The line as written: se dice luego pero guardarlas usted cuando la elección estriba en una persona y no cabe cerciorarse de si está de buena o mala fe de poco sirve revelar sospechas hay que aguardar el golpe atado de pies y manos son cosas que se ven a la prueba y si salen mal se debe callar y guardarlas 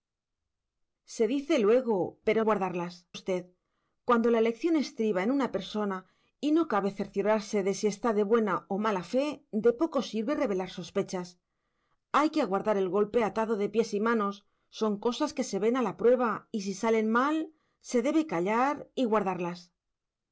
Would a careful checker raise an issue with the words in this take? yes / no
no